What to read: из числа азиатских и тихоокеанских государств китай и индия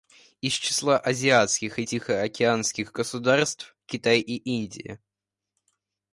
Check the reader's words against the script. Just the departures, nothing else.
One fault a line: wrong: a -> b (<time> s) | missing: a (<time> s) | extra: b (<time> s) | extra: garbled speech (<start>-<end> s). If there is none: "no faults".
no faults